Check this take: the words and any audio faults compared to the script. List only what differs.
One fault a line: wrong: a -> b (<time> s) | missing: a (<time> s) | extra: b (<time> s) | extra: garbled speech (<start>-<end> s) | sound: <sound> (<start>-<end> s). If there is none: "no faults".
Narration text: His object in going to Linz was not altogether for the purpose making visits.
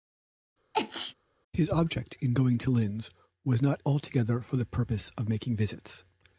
sound: sneeze (0.7-1.1 s)
extra: of (5.2 s)